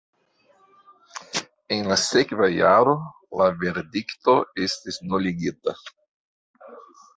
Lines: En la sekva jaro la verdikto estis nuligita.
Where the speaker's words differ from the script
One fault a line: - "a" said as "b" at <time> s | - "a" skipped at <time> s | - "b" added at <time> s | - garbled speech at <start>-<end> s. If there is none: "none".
none